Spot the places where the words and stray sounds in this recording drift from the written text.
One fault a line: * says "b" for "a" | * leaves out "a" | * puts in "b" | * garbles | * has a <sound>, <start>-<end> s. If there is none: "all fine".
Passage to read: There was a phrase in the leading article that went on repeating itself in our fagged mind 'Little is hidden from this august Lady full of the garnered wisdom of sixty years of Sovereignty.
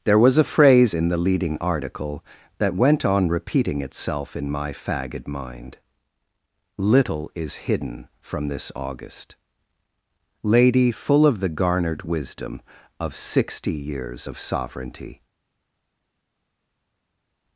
* says "my" for "our"